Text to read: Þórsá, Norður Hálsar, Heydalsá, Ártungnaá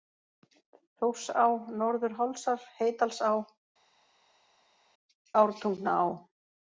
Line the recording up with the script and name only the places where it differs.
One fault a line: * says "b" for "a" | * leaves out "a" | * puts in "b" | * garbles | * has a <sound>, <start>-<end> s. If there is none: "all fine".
all fine